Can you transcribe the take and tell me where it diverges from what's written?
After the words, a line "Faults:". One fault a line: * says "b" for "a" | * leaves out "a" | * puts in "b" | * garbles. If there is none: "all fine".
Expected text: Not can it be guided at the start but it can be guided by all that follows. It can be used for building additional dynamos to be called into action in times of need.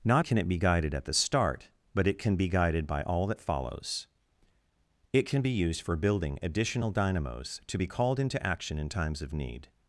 Not can it be guided at the start but it can be guided by all that follows. It can be used for building additional dynamos to be called into action in times of need.
Faults:
all fine